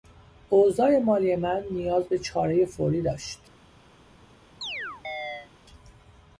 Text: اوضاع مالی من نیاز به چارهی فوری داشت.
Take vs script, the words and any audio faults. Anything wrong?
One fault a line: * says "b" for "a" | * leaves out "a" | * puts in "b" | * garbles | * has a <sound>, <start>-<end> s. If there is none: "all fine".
* has a chirp, 4.6-5.5 s